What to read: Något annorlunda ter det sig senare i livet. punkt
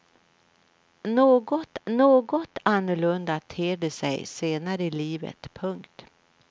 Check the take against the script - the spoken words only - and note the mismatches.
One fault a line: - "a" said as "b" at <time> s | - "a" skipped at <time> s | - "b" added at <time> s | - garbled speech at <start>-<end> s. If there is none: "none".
- "något" added at 1.9 s